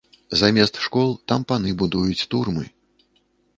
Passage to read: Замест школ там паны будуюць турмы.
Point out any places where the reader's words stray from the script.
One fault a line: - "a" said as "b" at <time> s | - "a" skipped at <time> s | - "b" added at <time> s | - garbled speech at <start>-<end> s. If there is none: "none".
none